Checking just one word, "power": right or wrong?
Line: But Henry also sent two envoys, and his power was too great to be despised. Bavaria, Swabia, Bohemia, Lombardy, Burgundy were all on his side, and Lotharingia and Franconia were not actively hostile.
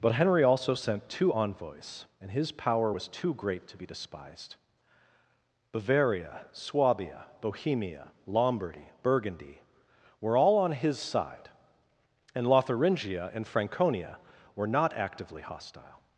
right